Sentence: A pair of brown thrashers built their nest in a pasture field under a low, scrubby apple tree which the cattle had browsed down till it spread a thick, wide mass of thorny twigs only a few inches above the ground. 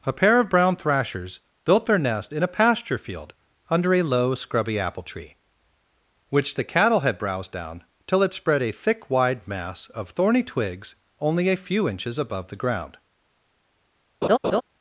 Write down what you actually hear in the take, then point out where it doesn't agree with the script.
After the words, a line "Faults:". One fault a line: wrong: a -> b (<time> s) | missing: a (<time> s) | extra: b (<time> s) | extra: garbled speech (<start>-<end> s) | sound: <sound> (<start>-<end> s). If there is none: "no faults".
A pair of brown thrashers built their nest in a pasture field under a low, scrubby apple tree which the cattle had browsed down till it spread a thick, wide mass of thorny twigs only a few inches above the ground.
Faults:
sound: laugh (14.2-14.6 s)